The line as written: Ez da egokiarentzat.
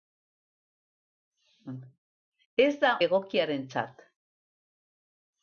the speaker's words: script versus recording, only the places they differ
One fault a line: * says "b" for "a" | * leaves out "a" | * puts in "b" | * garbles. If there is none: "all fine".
all fine